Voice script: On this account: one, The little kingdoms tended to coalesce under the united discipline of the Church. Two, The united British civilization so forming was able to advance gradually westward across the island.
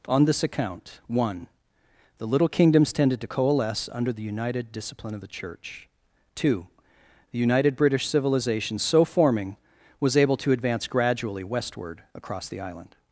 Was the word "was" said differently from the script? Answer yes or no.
no